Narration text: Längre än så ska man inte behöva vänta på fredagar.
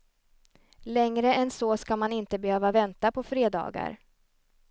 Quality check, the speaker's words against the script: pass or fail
pass